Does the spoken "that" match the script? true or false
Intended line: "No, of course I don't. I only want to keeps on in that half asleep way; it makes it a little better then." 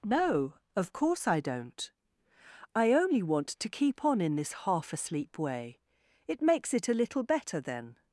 false